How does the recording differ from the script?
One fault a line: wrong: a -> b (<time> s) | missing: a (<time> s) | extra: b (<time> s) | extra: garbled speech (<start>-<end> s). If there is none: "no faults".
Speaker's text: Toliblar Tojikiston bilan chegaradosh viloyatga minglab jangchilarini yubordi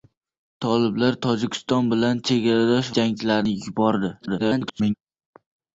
missing: viloyatga minglab (2.9 s)
extra: garbled speech (4.2-4.9 s)